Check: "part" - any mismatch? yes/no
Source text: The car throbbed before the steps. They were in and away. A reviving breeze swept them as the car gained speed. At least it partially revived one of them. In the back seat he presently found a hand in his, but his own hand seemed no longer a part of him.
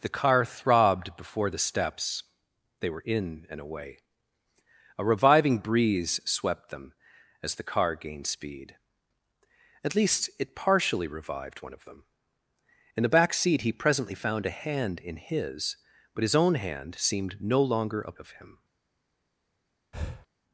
yes